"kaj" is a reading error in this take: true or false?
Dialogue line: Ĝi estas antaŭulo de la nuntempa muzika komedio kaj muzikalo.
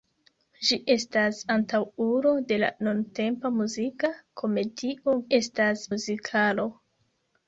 true